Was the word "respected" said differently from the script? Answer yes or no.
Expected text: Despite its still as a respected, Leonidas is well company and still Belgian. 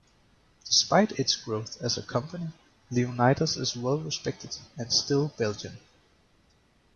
yes